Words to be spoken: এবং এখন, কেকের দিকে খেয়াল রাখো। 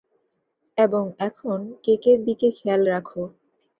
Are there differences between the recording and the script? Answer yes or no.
no